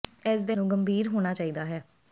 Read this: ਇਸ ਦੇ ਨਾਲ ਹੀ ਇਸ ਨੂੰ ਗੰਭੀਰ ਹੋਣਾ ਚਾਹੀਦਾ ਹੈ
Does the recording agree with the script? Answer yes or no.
no